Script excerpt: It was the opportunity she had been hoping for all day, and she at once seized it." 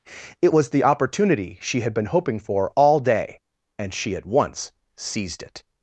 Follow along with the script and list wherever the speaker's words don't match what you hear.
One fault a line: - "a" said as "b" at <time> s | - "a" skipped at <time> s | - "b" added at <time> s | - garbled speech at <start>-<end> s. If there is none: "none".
none